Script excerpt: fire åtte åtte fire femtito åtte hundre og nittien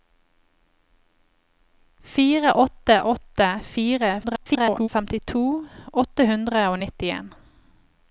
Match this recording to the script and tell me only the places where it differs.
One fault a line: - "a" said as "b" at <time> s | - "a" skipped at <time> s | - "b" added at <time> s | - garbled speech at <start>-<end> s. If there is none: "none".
- garbled speech at 4.2-4.9 s